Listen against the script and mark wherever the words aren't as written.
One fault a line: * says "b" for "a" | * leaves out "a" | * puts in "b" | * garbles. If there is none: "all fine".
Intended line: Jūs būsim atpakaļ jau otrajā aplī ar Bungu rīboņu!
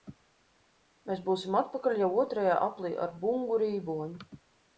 * says "Mēs" for "Jūs"